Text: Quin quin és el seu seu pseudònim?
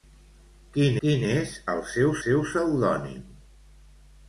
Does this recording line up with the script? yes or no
yes